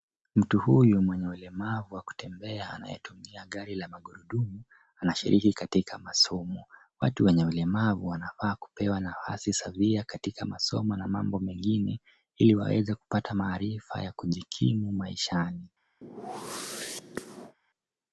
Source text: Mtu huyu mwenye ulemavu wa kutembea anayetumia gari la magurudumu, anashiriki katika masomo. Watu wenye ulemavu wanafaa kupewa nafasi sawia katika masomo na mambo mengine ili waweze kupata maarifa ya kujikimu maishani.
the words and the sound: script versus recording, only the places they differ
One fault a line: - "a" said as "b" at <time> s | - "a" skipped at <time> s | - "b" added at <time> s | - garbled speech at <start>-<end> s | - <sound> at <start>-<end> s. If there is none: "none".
- whoosh at 16.0-17.6 s